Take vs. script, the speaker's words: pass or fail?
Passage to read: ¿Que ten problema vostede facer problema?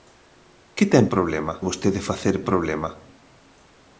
pass